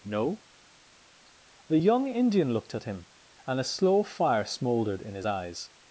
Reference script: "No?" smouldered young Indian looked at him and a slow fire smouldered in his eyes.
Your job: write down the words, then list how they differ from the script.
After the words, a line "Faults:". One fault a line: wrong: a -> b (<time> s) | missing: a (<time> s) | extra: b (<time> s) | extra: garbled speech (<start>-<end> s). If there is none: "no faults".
"No?" the young Indian looked at him and a slow fire smouldered in his eyes.
Faults:
wrong: smouldered -> the (1.7 s)